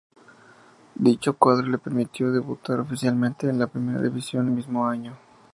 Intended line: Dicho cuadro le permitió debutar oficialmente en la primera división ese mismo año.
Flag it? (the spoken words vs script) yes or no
yes